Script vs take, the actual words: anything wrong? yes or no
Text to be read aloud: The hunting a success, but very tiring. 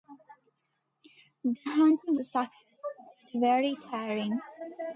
no